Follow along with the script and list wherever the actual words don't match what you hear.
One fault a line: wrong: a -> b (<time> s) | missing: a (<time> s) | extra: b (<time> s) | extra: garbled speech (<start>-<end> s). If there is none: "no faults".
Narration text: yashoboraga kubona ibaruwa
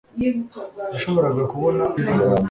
no faults